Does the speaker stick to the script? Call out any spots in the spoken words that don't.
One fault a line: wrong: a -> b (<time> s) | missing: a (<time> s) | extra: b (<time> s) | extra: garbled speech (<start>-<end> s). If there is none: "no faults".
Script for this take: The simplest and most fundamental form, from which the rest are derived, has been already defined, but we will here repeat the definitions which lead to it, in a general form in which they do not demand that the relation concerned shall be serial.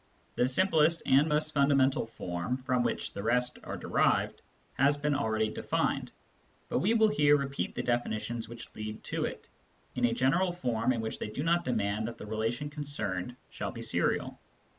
no faults